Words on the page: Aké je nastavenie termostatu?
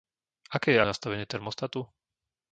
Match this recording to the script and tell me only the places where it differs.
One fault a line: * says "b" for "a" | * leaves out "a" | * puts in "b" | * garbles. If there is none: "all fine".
all fine